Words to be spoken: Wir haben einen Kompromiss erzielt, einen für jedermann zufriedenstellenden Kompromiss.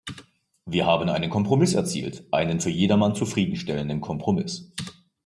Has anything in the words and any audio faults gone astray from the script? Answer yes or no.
no